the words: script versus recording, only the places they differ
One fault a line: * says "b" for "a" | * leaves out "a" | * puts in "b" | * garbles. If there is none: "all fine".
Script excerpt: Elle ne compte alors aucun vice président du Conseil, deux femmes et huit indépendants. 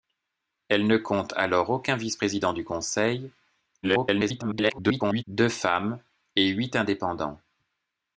* garbles